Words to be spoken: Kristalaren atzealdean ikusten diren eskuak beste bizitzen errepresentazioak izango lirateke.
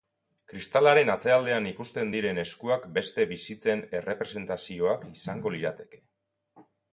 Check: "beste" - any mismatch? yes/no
no